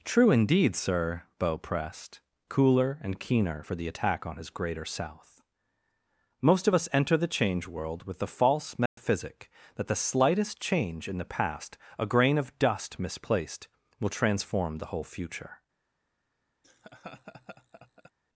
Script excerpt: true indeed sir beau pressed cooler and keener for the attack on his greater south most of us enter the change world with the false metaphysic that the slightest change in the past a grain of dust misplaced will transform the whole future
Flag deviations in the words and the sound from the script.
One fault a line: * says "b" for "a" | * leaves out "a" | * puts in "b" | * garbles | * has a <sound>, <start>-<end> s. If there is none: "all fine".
* has a dropout, 8.9-9.0 s
* has a laugh, 16.6-18.1 s